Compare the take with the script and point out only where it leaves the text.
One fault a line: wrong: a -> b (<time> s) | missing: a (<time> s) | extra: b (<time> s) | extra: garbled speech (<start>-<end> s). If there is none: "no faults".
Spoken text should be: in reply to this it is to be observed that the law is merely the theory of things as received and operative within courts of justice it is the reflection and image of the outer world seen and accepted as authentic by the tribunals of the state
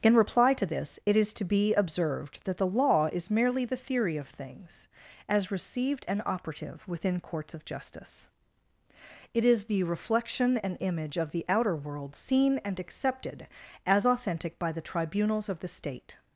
no faults